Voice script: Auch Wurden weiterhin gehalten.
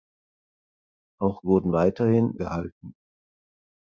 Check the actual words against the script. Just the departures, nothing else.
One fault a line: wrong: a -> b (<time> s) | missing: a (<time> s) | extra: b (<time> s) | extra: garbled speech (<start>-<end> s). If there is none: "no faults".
no faults